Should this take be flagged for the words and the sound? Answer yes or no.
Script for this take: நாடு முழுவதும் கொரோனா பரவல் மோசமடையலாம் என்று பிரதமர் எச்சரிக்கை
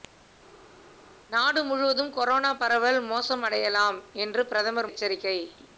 no